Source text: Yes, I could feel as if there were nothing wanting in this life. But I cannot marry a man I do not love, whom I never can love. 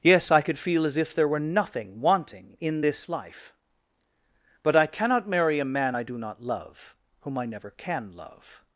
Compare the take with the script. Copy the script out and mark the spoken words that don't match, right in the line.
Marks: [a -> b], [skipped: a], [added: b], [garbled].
Yes, I could feel as if there were nothing wanting in this life. But I cannot marry a man I do not love, whom I never can love.